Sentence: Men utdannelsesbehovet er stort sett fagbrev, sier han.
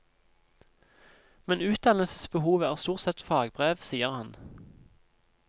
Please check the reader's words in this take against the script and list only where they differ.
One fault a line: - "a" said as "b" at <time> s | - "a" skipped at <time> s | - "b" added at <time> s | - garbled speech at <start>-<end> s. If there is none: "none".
none